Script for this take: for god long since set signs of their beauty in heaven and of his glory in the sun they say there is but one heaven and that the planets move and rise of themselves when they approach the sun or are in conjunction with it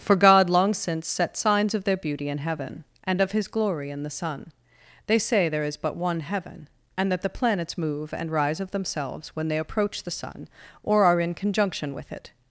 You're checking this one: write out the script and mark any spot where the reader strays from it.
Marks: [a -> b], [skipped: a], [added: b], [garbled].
for god long since set signs of their beauty in heaven and of his glory in the sun they say there is but one heaven and that the planets move and rise of themselves when they approach the sun or are in conjunction with it